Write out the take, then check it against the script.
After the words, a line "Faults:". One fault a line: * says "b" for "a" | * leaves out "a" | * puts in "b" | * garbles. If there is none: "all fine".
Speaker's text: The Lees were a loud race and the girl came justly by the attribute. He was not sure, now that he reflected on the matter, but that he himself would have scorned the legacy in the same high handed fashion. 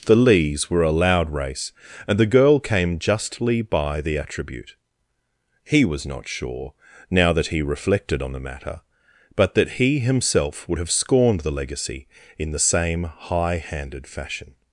The Lees were a loud race and the girl came justly by the attribute. He was not sure, now that he reflected on the matter, but that he himself would have scorned the legacy in the same high handed fashion.
Faults:
all fine